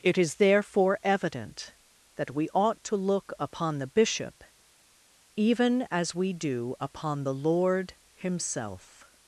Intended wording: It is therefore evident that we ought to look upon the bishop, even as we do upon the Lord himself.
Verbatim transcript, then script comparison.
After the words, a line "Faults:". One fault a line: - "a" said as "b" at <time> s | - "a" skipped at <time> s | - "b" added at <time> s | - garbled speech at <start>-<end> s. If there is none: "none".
It is therefore evident that we ought to look upon the bishop, even as we do upon the Lord himself.
Faults:
none